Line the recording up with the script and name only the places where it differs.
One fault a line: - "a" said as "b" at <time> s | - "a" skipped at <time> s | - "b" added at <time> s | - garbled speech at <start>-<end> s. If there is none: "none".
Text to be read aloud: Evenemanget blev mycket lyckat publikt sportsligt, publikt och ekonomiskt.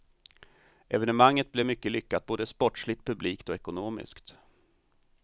- "publikt" said as "både" at 2.3 s